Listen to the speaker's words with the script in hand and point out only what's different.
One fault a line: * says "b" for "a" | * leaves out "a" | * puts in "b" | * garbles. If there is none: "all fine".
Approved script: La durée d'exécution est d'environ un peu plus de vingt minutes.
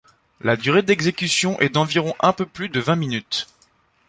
all fine